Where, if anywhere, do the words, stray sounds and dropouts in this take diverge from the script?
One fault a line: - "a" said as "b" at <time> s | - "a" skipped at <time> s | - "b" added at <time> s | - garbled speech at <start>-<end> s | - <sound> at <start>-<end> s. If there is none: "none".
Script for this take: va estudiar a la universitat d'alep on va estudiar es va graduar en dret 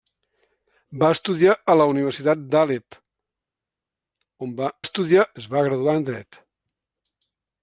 none